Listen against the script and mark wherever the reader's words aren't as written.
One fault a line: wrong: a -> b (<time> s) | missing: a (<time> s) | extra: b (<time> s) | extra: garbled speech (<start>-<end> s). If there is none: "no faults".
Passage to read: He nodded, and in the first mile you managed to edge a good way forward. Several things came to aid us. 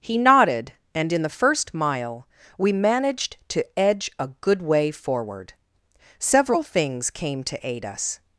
wrong: you -> we (2.6 s)